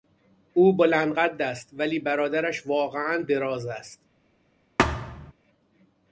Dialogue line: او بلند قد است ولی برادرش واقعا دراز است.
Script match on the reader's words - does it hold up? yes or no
yes